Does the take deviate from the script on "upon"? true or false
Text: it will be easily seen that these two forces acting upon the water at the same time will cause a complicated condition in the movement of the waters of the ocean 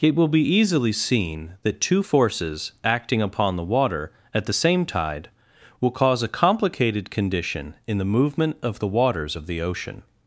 false